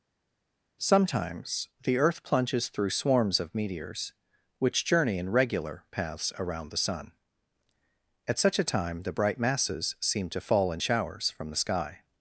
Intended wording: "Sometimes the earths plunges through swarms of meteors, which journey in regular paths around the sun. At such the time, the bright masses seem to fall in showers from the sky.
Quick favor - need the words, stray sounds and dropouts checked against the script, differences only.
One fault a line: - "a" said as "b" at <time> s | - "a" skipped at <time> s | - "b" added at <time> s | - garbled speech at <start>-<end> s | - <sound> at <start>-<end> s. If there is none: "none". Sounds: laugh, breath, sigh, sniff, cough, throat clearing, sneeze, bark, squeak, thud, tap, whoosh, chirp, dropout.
- "earths" said as "earth" at 2.0 s
- "the" said as "a" at 8.6 s